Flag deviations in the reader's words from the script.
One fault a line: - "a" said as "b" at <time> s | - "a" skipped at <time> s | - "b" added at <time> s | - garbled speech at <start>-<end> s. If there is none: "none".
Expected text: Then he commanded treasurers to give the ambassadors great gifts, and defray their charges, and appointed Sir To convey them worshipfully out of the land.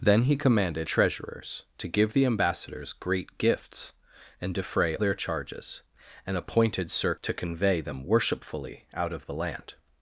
none